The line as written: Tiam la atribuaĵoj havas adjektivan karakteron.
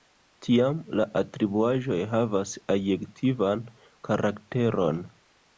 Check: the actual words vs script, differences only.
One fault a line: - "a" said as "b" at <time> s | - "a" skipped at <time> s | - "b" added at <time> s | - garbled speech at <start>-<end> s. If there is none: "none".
none